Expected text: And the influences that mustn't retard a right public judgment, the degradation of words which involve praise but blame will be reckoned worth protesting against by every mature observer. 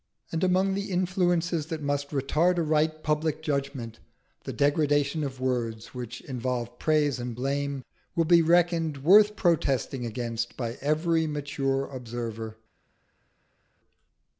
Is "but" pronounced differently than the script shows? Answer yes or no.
yes